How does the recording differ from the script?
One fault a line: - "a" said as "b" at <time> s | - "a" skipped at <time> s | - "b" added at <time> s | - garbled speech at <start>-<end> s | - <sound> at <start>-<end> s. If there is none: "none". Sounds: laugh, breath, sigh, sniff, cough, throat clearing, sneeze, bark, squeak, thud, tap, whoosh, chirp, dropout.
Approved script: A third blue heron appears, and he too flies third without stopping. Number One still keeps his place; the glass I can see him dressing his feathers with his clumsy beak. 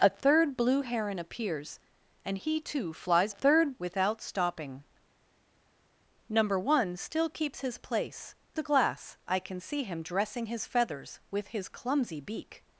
none